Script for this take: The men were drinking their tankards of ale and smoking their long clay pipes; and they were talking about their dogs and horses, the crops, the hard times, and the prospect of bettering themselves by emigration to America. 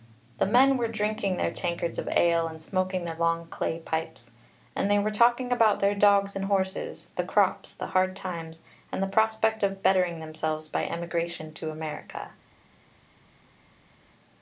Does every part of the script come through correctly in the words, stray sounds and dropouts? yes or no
yes